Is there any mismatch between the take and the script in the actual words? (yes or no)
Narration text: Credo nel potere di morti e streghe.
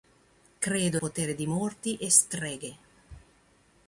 yes